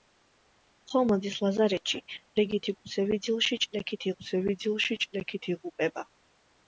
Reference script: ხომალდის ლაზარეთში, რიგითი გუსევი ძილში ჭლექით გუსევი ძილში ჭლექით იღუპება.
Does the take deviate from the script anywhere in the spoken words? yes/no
no